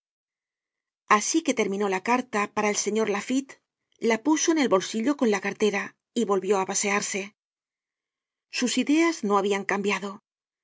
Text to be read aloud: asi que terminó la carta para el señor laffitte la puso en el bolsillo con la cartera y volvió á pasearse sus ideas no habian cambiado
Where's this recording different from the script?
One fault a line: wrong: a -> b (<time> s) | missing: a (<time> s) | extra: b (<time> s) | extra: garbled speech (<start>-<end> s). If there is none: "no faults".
no faults